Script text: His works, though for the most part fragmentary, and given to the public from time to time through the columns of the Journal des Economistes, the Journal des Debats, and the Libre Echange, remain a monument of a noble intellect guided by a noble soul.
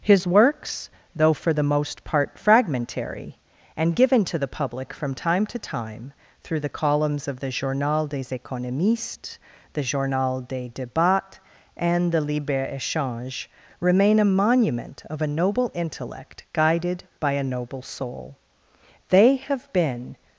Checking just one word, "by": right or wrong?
right